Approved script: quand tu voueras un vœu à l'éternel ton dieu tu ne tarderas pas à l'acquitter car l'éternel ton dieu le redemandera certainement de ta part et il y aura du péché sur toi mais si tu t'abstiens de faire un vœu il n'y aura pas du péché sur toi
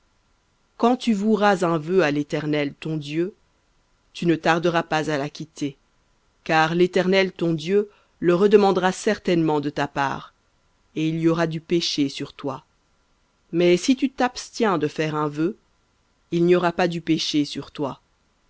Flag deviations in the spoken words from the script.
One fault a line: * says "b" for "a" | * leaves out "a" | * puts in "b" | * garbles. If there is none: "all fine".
all fine